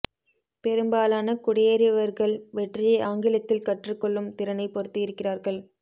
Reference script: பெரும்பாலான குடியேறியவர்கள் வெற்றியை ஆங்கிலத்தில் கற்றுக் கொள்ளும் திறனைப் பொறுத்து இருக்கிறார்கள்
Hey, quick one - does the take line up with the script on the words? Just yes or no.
yes